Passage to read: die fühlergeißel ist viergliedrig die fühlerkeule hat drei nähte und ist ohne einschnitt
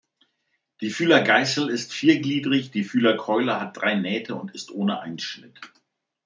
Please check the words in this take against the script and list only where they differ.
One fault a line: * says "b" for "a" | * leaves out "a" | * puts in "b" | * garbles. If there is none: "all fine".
all fine